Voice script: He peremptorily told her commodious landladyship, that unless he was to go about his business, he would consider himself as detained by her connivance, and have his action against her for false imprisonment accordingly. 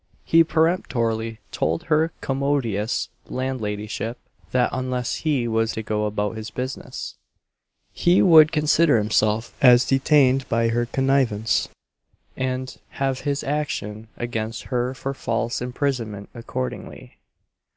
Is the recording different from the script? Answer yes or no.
no